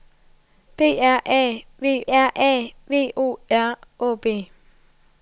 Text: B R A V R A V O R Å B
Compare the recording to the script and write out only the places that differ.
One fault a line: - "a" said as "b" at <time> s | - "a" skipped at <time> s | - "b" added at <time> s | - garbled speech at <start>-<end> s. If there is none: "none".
none